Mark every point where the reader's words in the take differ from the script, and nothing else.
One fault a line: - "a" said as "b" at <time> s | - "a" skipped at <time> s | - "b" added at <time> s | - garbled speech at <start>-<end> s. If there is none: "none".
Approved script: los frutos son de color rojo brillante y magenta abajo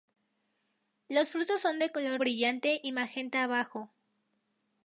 - "rojo" skipped at 2.2 s